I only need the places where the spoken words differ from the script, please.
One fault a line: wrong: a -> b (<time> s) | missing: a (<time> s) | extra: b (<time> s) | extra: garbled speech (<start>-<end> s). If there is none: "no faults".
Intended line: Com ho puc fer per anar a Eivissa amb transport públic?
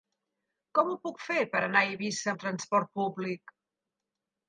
no faults